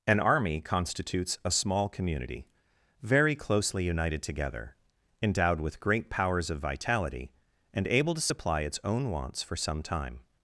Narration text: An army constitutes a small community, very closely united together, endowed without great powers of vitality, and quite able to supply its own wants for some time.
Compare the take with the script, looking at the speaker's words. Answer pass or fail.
fail